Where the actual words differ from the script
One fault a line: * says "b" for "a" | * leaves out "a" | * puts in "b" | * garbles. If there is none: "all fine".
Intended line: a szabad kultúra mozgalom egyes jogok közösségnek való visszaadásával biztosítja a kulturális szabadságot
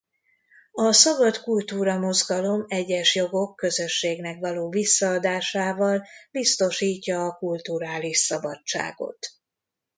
all fine